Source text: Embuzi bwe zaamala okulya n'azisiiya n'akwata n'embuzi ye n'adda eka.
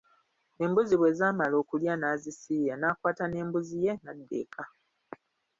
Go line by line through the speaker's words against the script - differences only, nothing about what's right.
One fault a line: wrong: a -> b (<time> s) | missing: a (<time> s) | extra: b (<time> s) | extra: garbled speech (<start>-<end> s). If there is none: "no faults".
no faults